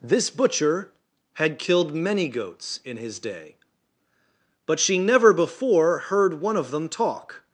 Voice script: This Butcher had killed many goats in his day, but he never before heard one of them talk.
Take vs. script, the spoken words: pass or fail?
fail